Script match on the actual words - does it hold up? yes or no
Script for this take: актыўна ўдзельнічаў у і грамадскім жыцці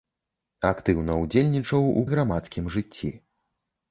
yes